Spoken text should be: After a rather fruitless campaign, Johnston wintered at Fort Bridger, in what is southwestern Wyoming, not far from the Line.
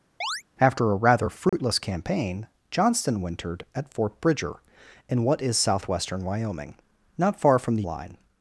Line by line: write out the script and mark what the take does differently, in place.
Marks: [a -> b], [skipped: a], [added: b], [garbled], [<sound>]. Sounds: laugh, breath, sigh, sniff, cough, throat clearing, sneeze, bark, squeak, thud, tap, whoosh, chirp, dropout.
[chirp] After a rather fruitless [dropout] campaign, Johnston wintered at Fort Bridger, in what is southwestern Wyoming, not far from the Line.